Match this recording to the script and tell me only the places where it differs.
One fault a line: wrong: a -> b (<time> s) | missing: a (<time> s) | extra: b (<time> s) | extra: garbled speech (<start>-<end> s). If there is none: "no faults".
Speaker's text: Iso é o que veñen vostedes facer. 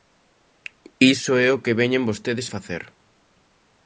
no faults